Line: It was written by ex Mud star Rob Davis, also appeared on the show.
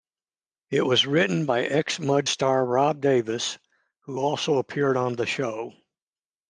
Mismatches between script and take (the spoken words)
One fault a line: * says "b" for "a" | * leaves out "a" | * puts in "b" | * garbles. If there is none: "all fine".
* puts in "who"